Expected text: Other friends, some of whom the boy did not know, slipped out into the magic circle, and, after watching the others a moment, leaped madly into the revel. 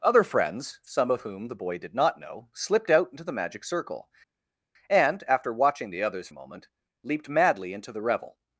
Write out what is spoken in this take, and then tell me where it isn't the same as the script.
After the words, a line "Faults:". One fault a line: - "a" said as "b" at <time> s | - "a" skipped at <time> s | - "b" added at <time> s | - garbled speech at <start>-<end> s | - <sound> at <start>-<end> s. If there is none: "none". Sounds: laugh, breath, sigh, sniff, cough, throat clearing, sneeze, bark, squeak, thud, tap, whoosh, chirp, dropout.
Other friends, some of whom the boy did not know, slipped out into the magic circle, and, after watching the others a moment, leaped madly into the revel.
Faults:
none